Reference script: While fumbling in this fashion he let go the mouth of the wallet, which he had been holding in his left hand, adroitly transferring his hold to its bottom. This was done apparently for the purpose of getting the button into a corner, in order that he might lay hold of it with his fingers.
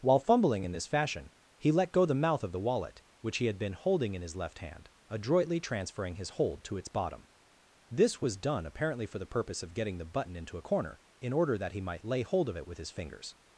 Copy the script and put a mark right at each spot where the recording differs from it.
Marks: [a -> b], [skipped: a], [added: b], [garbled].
While fumbling in this fashion he let go the mouth of the wallet, which he had been holding in his left hand, adroitly transferring his hold to its bottom. This was done apparently for the purpose of getting the button into a corner, in order that he might lay hold of it with his fingers.